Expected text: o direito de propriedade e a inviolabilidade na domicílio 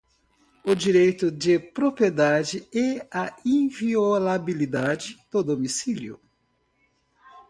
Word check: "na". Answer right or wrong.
wrong